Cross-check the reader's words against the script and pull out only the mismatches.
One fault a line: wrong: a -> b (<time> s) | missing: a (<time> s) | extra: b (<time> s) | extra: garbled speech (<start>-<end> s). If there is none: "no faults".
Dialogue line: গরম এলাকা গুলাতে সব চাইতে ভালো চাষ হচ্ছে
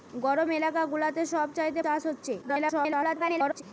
missing: ভালো (1.8 s)
extra: garbled speech (2.4-3.6 s)